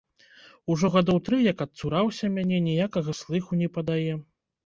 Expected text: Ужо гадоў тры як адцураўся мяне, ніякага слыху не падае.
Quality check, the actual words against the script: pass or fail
pass